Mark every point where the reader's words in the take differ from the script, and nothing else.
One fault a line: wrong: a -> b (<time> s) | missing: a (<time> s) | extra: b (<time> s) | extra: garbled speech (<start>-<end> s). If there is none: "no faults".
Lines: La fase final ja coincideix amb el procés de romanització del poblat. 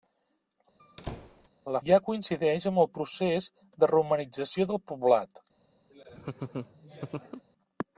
missing: fase final (1.8 s)